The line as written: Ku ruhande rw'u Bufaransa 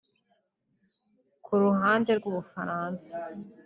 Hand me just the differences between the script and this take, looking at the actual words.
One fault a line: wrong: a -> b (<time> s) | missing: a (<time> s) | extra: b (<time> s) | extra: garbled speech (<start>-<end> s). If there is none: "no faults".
no faults